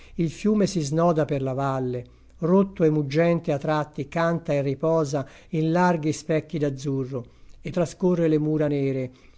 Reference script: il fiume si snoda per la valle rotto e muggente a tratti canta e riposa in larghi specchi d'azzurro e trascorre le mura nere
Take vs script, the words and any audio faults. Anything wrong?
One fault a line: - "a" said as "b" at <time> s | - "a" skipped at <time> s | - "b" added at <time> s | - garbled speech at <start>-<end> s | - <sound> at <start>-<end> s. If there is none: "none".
none